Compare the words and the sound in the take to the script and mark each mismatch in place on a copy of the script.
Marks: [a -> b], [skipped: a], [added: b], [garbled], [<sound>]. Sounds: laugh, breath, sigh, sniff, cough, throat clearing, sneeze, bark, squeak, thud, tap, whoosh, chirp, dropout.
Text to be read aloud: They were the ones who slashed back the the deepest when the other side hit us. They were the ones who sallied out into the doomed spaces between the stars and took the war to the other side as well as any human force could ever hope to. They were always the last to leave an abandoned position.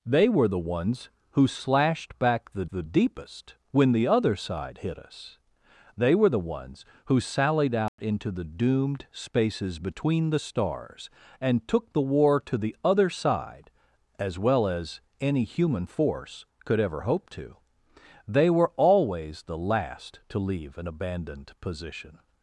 They were the ones who slashed back the the deepest when the other side hit us. They were the ones who sallied out [dropout] into the doomed spaces between the stars and took the war to the other side as well as any human force could ever hope to. They were always the last to leave an abandoned position.